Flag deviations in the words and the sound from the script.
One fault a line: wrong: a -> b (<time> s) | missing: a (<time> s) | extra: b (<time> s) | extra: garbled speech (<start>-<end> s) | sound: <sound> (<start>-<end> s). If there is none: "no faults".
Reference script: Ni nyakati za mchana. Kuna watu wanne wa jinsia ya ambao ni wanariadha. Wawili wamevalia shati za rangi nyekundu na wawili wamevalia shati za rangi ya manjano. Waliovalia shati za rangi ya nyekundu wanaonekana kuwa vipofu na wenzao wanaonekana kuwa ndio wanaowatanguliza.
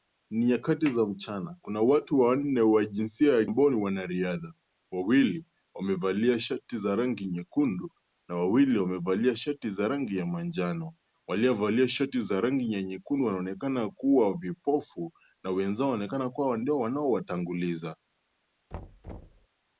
sound: thud (18.7-19.5 s)